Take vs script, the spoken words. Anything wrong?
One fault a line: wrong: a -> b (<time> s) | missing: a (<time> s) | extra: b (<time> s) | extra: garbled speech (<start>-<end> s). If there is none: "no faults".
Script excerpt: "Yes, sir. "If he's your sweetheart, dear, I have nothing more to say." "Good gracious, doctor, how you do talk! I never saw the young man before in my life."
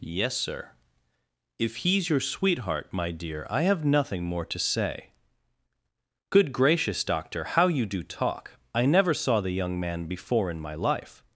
extra: my (2.9 s)